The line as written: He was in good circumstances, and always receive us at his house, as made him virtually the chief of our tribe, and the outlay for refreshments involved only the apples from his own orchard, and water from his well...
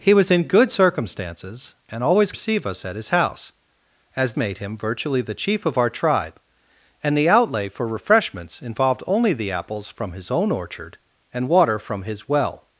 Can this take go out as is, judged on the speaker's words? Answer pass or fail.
pass